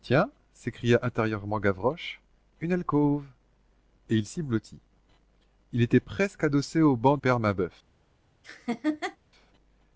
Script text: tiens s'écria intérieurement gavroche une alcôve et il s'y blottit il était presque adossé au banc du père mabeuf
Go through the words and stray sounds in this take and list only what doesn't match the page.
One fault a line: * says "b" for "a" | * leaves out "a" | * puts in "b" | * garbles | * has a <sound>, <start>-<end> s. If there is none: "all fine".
* leaves out "du"
* has a laugh, 8.4-9.2 s